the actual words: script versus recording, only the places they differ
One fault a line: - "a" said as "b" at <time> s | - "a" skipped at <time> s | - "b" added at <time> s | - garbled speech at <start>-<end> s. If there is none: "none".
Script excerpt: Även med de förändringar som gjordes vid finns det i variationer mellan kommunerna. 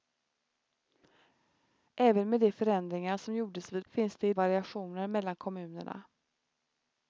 none